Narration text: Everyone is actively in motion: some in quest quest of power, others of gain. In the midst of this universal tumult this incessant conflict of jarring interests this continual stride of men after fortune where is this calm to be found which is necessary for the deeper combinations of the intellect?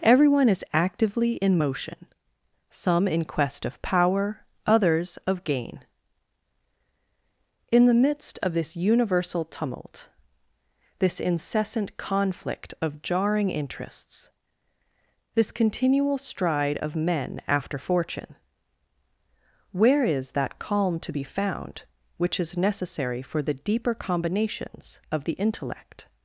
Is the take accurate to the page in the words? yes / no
no